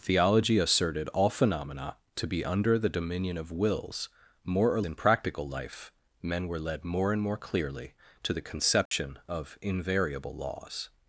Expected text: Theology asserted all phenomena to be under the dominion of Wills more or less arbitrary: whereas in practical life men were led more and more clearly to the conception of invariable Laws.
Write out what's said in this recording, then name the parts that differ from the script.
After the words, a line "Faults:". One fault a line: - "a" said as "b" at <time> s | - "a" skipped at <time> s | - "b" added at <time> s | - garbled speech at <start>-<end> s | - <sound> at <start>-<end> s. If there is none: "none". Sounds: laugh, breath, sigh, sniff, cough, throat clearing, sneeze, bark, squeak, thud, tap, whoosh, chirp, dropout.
Theology asserted all phenomena to be under the dominion of Wills more or in practical life men were led more and more clearly to the conception of invariable Laws.
Faults:
- "less arbitrary whereas" skipped at 4.8 s
- dropout at 8.9-8.9 s